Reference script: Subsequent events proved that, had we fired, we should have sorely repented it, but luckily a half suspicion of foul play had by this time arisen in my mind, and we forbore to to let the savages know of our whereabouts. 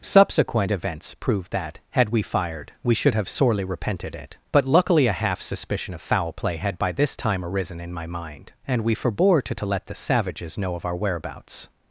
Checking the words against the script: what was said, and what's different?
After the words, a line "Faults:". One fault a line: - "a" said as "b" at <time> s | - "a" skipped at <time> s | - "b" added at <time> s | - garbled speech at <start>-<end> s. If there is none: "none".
Subsequent events proved that, had we fired, we should have sorely repented it, but luckily a half suspicion of foul play had by this time arisen in my mind, and we forbore to to let the savages know of our whereabouts.
Faults:
none